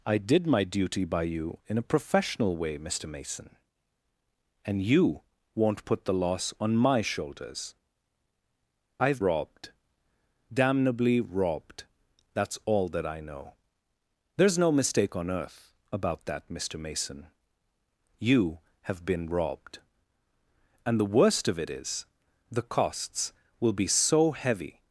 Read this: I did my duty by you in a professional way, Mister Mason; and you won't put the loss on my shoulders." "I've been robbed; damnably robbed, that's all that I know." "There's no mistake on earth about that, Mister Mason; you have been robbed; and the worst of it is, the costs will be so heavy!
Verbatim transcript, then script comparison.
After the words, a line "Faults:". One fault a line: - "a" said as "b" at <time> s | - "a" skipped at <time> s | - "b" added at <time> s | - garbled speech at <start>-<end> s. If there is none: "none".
I did my duty by you in a professional way, Mister Mason; and you won't put the loss on my shoulders." "I've robbed; damnably robbed, that's all that I know." "There's no mistake on earth about that, Mister Mason; you have been robbed; and the worst of it is, the costs will be so heavy!
Faults:
- "been" skipped at 9.2 s